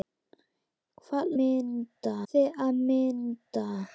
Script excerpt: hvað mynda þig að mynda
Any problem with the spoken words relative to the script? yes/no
no